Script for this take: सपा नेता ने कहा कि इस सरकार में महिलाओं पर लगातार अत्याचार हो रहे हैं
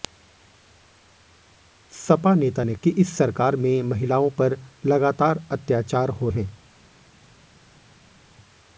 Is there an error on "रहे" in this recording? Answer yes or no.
yes